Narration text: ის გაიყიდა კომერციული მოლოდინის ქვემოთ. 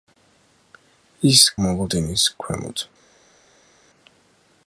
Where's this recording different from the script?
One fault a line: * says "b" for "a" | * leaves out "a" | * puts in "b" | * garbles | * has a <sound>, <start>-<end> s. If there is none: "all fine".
* leaves out "გაიყიდა კომერციული"